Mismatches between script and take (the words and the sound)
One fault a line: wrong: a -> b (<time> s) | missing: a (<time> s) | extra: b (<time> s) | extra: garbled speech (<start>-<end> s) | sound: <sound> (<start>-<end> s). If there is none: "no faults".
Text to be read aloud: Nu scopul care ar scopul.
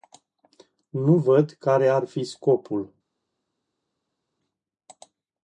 wrong: scopul -> văd (1.2 s)
extra: fi (2.1 s)